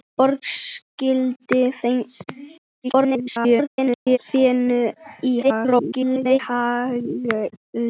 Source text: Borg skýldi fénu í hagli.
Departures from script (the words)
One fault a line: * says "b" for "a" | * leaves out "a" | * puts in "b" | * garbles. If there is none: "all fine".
* garbles
* garbles